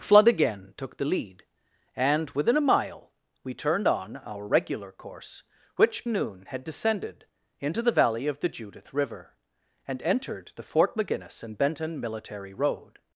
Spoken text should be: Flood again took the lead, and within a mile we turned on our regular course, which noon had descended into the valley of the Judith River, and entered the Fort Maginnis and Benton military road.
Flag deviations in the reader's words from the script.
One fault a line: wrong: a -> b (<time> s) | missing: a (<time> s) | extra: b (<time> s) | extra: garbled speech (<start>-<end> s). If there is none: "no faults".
no faults